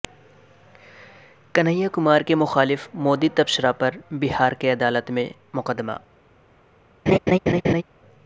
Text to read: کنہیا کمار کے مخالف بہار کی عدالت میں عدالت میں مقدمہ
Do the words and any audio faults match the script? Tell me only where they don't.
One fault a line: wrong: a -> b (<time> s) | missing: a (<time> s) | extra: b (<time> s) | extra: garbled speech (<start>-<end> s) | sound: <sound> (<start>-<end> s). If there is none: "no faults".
extra: مودی تبصرہ پر (3.0 s)
missing: عدالت میں (5.3 s)
sound: laugh (7.1-7.8 s)